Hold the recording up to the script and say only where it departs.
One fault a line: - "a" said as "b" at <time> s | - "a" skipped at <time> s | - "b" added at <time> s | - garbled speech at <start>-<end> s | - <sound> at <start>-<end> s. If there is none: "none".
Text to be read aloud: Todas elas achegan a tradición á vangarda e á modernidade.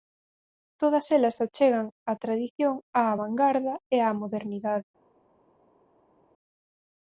none